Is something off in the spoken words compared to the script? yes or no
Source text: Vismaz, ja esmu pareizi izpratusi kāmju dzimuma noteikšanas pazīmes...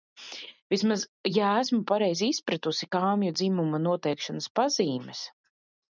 no